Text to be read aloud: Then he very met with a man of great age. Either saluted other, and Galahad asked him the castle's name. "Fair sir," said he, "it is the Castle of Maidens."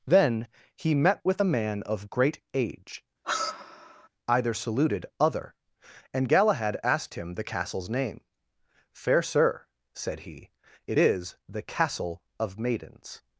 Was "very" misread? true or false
true